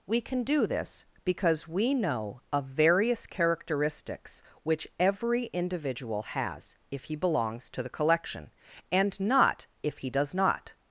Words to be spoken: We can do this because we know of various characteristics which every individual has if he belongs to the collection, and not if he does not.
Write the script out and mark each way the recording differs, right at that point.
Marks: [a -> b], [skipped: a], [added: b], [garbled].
We can do this because we know of various characteristics which every individual has if he belongs to the collection, and not if he does not.